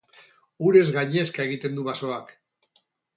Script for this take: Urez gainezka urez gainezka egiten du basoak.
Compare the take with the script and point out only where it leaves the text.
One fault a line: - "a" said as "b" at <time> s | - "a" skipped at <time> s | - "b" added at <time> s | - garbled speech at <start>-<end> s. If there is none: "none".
- "urez gainezka" skipped at 1.4 s